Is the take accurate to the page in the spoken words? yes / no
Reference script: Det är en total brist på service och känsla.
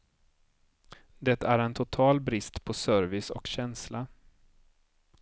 yes